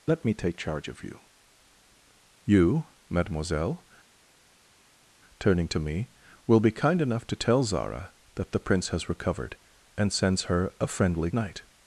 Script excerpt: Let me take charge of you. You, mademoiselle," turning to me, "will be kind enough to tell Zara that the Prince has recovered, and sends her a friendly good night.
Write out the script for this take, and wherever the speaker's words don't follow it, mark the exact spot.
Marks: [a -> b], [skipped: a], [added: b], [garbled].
Let me take charge of you. You, mademoiselle," turning to me, "will be kind enough to tell Zara that the Prince has recovered, and sends her a friendly [skipped: good] night.